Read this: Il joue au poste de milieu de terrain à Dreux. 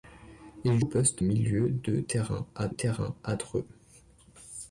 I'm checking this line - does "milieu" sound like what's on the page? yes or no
no